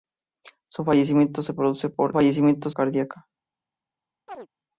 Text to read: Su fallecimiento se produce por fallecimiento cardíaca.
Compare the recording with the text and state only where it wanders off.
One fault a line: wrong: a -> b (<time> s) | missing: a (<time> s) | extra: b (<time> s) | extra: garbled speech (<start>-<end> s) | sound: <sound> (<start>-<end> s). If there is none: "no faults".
sound: chirp (4.3-4.5 s)